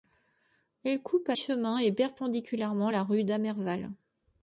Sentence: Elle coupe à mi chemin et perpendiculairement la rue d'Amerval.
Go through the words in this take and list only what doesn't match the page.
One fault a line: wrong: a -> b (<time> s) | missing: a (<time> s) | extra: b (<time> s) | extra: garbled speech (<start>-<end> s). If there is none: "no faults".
missing: mi (1.4 s)